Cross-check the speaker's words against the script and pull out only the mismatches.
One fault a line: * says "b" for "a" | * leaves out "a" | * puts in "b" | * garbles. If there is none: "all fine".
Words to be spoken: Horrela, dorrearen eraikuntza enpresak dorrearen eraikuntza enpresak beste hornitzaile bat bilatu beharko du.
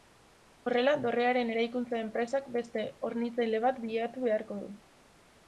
* leaves out "dorrearen eraikuntza enpresak"